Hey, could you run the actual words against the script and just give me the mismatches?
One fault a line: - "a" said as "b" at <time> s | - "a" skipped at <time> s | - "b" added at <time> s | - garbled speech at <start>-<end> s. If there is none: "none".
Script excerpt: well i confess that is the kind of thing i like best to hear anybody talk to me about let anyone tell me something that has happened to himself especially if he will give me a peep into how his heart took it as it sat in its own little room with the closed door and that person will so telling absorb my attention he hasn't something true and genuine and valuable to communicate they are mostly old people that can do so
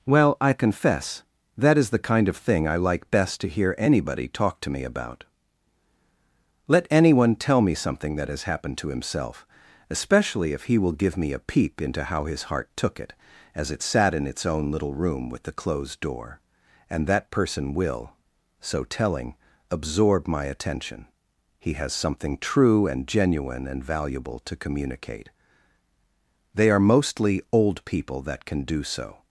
- "hasn't" said as "has" at 21.7 s